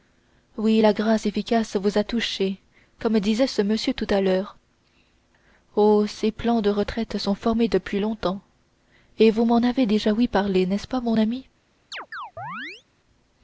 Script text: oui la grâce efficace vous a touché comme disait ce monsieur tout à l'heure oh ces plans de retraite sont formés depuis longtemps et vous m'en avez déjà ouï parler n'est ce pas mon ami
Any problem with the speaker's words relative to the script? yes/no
no